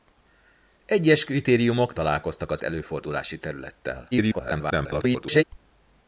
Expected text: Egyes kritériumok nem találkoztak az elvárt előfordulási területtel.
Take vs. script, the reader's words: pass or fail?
fail